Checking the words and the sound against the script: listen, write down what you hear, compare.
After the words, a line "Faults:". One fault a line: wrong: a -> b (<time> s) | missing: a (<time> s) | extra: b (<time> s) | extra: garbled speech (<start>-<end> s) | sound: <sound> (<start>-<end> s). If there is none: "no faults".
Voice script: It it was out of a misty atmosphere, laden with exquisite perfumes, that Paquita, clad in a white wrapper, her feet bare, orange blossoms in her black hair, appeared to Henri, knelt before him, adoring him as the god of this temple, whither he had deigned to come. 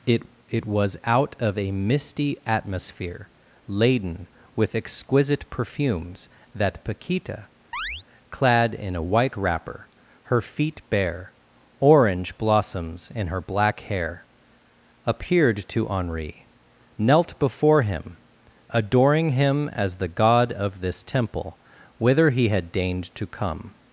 It it was out of a misty atmosphere, laden with exquisite perfumes, that Paquita, clad in a white wrapper, her feet bare, orange blossoms in her black hair, appeared to Henri, knelt before him, adoring him as the god of this temple, whither he had deigned to come.
Faults:
sound: chirp (7.7-8.1 s)